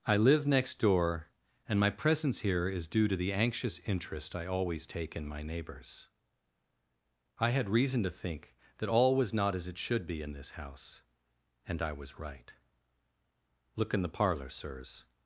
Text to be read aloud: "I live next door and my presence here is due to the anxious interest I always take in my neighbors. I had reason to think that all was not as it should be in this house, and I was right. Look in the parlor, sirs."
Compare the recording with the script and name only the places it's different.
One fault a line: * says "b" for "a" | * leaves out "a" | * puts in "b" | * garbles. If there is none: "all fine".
all fine